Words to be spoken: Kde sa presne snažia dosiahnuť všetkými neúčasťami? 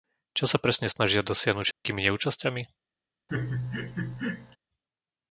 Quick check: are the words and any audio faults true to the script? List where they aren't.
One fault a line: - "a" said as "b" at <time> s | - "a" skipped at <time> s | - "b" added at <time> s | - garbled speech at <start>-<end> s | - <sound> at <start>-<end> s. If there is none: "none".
- "Kde" said as "Čo" at 0.3 s
- dropout at 1.7-1.8 s
- laugh at 3.3-4.6 s